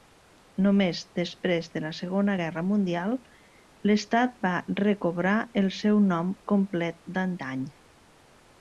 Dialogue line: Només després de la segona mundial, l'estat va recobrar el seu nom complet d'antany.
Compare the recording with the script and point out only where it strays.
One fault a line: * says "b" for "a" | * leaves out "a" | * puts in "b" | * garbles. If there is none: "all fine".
* puts in "guerra"